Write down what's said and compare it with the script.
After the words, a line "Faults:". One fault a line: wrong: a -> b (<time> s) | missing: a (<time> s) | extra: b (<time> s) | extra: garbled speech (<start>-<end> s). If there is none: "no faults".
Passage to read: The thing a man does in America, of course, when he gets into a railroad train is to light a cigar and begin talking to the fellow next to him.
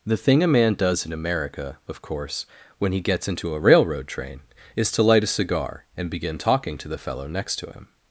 The thing a man does in America, of course, when he gets into a railroad train is to light a cigar and begin talking to the fellow next to him.
Faults:
no faults